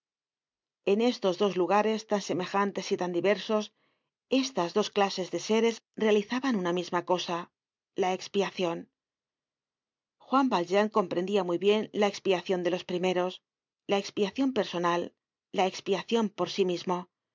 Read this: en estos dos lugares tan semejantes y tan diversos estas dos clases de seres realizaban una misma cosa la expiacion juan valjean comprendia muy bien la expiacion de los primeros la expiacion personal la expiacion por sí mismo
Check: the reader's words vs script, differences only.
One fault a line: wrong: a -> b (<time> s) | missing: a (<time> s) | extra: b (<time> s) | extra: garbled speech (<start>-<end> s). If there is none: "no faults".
no faults